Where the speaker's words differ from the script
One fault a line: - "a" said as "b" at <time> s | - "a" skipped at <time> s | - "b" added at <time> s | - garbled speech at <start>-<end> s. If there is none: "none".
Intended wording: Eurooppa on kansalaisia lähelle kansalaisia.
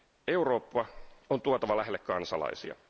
- "kansalaisia" said as "tuotava" at 1.4 s